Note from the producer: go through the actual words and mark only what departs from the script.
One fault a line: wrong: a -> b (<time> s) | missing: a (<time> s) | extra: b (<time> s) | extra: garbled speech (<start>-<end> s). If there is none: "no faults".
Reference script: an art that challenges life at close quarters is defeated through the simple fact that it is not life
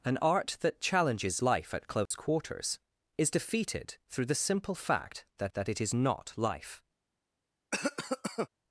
extra: that (5.5 s)